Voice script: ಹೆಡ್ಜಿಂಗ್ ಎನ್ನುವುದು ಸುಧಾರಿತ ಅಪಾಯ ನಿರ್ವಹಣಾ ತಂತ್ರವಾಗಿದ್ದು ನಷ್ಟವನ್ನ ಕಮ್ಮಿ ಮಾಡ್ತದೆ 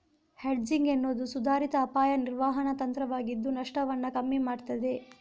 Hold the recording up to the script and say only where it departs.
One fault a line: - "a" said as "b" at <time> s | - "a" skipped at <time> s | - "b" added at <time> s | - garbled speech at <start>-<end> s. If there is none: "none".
none